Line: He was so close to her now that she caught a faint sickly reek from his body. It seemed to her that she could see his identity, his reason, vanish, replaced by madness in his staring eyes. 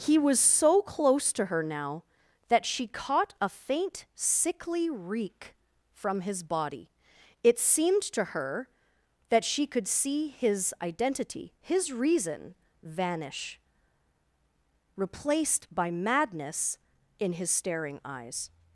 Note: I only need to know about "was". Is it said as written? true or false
true